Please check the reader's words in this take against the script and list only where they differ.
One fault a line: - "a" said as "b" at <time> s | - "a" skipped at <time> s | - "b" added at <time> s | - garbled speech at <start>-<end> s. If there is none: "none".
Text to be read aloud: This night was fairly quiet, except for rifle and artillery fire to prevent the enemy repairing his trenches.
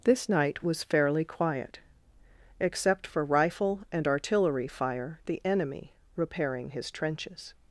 - "to prevent" skipped at 5.2 s